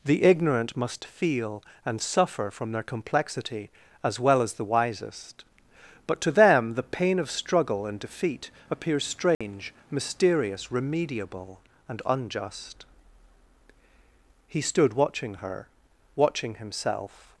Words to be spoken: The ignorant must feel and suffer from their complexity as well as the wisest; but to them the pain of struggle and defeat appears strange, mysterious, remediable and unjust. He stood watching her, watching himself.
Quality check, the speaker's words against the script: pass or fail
pass